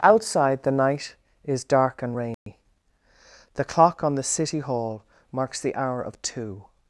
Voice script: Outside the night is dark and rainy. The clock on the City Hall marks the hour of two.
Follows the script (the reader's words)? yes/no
yes